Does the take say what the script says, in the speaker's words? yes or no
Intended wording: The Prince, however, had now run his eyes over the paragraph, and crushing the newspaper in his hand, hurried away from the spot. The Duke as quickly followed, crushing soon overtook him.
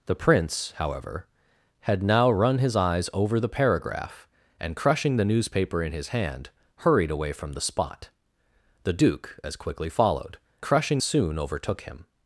yes